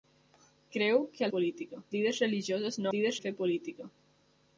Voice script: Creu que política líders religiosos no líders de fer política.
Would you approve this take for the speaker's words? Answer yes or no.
yes